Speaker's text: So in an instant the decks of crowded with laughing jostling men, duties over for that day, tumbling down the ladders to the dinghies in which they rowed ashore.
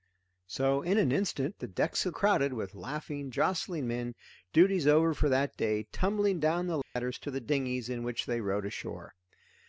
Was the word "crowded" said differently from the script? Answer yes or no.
no